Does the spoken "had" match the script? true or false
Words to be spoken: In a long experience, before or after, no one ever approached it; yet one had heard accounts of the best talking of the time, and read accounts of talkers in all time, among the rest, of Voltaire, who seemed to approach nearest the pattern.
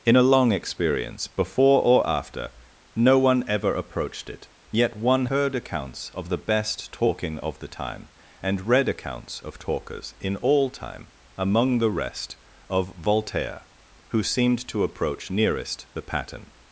false